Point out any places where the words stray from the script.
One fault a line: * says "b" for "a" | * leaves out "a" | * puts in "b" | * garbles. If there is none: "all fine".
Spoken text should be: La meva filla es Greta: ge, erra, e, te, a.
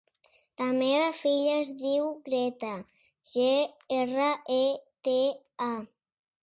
* puts in "diu"